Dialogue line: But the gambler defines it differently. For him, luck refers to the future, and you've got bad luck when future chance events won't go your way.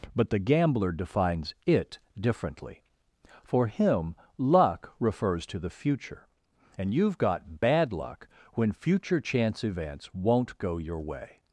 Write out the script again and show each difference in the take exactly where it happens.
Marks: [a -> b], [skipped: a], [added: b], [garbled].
But the gambler defines it differently. For him, luck refers to the future, and you've got bad luck when future chance events won't go your way.